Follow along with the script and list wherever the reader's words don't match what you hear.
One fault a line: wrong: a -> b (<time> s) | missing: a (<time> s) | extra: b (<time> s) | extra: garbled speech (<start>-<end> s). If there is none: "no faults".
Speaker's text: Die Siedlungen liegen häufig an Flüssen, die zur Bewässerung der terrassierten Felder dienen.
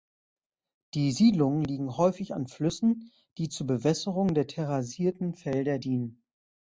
no faults